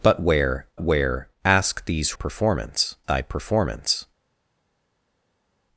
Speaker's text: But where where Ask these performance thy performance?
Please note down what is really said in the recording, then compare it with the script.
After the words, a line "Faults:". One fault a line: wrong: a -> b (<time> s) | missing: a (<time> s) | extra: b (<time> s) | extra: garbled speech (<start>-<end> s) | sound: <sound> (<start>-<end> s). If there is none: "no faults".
But where where Ask these performance thy performance?
Faults:
no faults